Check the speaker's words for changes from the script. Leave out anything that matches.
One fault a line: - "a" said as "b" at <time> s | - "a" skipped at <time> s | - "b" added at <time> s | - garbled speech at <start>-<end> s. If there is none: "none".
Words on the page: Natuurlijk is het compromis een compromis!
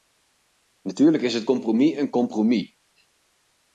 none